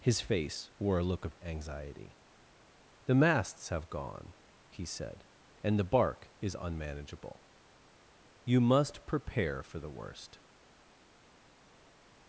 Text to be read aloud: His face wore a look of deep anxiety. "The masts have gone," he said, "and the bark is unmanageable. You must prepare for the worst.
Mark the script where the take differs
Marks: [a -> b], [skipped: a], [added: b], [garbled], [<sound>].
His face wore a look of [skipped: deep] anxiety. "The masts have gone," he said, "and the bark is unmanageable. You must prepare for the worst.